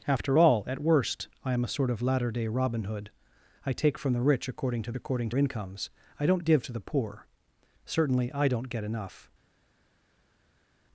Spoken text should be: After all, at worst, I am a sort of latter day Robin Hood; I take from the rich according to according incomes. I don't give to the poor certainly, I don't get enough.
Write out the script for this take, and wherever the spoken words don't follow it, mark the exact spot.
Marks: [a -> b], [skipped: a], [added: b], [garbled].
After all, at worst, I am a sort of latter day Robin Hood; I take from the rich according to according incomes. I don't give to the poor certainly, I don't get enough.